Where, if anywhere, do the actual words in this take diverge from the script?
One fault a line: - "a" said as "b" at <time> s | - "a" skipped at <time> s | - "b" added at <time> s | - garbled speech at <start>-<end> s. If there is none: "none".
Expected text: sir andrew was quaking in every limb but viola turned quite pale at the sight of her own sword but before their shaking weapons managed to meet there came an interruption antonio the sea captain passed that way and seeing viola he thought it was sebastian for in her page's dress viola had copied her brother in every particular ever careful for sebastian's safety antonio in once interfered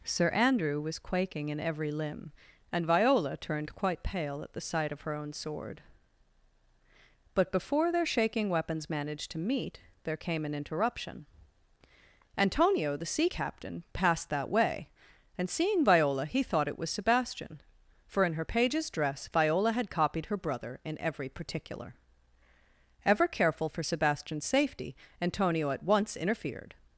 - "but" said as "and" at 2.7 s
- "in" said as "at" at 25.7 s